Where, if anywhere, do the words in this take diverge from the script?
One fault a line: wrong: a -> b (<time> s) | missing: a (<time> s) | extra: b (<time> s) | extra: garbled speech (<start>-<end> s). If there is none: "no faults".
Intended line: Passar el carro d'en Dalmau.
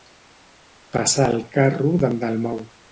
no faults